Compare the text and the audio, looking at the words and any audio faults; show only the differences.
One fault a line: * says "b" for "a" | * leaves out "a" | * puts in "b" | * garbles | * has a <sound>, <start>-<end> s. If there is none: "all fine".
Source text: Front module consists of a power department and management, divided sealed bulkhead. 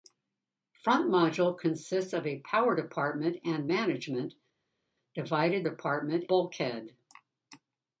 * says "department" for "sealed"